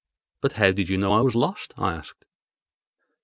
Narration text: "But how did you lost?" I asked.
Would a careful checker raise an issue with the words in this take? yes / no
yes